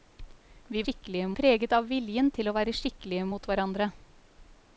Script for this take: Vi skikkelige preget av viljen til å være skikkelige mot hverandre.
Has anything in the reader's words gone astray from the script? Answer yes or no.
no